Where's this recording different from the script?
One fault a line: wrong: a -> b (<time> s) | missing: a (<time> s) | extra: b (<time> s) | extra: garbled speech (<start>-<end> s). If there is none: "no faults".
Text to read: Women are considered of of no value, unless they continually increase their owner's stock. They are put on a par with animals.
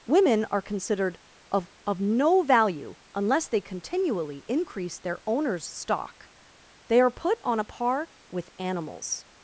no faults